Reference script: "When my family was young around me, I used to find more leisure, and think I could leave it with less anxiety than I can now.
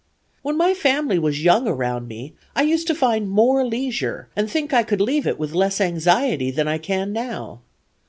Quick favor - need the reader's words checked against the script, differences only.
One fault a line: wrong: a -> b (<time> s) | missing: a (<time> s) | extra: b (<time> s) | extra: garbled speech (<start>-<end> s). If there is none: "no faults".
no faults